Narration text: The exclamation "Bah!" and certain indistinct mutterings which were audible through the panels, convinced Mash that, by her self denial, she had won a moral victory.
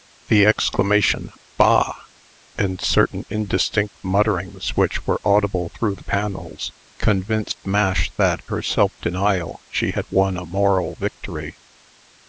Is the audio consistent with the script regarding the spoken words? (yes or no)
no